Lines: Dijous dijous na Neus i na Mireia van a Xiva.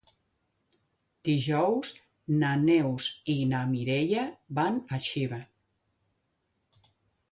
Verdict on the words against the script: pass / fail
fail